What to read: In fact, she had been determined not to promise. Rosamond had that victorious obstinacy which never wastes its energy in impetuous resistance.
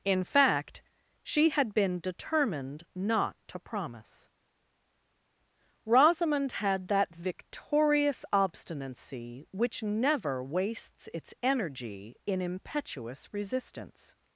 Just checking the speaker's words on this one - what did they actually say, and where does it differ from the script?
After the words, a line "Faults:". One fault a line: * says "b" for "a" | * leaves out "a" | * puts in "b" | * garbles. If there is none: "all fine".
In fact, she had been determined not to promise. Rosamond had that victorious obstinacy which never wastes its energy in impetuous resistance.
Faults:
all fine